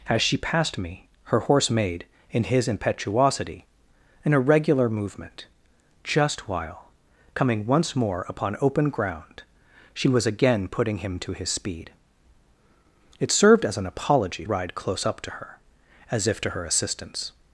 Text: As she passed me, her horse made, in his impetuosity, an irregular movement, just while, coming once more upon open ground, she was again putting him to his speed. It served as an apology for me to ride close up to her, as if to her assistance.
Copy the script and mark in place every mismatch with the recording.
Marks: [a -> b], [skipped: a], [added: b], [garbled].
As she passed me, her horse made, in his impetuosity, an irregular movement, just while, coming once more upon open ground, she was again putting him to his speed. It served as an apology [skipped: for me to] ride close up to her, as if to her assistance.